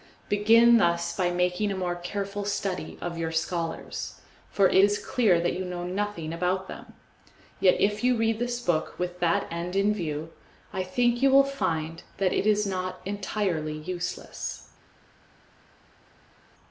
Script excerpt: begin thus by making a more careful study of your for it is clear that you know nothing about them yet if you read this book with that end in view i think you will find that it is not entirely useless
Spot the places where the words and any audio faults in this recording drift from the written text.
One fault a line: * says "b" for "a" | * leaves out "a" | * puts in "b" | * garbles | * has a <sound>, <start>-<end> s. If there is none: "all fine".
* puts in "scholars"